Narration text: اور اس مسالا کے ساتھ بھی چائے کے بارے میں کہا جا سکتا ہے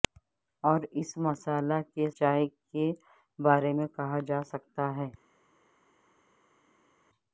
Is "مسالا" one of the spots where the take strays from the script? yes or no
no